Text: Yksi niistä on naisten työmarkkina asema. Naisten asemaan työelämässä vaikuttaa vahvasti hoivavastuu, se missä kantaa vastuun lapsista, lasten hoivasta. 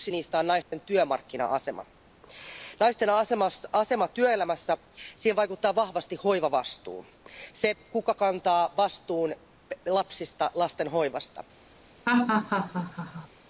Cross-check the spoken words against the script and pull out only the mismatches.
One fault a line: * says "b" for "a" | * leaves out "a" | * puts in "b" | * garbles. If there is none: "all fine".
* says "kuka" for "missä"